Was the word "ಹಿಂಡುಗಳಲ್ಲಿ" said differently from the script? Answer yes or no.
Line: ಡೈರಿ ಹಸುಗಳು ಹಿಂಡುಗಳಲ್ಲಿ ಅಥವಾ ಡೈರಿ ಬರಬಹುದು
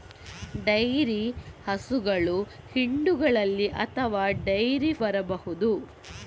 no